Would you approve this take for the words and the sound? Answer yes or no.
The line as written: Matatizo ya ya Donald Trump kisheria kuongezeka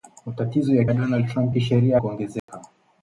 no